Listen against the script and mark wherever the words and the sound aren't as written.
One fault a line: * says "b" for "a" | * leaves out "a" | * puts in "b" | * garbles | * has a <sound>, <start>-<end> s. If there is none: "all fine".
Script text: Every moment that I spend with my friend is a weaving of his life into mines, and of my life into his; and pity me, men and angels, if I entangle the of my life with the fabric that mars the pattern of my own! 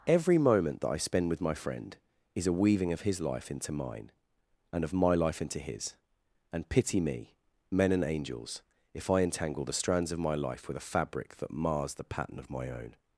* says "mine" for "mines"
* puts in "strands"
* says "a" for "the"